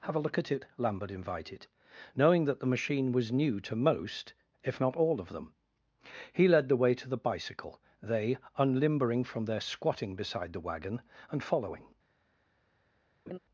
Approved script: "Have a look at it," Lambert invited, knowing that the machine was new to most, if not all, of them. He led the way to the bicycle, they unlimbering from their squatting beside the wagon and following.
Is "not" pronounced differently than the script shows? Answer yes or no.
no